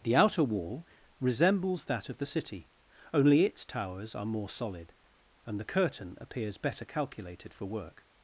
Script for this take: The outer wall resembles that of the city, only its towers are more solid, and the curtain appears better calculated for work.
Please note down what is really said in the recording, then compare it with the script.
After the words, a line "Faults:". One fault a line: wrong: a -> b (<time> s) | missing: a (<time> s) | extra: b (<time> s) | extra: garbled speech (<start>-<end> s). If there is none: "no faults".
The outer wall resembles that of the city, only its towers are more solid, and the curtain appears better calculated for work.
Faults:
no faults